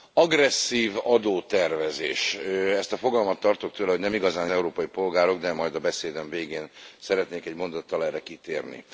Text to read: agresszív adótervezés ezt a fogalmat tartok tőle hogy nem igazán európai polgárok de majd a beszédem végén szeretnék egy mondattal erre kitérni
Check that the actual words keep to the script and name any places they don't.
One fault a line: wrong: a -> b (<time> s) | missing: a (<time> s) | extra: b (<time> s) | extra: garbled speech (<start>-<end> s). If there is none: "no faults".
no faults